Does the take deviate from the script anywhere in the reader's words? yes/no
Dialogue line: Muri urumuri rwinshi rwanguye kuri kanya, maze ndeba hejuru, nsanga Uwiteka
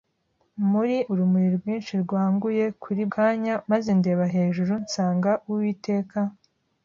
no